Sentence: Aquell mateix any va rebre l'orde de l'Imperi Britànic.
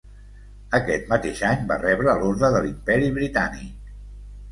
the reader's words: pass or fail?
fail